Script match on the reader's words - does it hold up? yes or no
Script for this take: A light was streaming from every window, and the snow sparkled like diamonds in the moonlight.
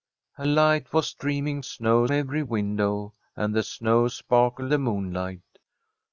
no